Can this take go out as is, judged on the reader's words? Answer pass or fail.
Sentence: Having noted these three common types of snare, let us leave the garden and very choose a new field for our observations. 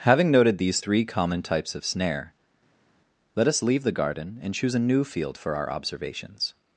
fail